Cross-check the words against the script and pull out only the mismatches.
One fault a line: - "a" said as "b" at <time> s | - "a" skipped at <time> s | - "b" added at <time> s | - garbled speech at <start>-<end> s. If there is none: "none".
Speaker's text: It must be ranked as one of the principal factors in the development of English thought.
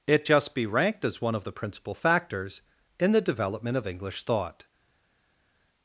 - "must" said as "just" at 0.2 s